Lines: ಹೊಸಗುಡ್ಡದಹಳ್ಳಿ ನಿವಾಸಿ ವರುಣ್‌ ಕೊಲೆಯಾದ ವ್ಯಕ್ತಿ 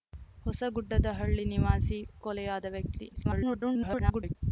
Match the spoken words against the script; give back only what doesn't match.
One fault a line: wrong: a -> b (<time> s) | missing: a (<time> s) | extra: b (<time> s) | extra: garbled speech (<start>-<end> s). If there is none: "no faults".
missing: ವರುಣ್ (2.0 s)
extra: garbled speech (3.1-4.4 s)